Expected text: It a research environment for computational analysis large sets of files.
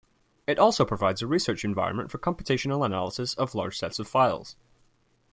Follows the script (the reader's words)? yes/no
no